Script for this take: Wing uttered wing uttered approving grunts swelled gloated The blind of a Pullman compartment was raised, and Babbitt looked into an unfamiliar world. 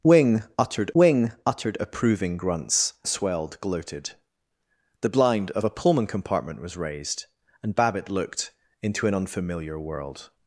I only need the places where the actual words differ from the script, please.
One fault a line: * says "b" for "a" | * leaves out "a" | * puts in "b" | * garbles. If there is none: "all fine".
all fine